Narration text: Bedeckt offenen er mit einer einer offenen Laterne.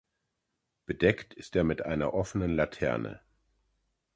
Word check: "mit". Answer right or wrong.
right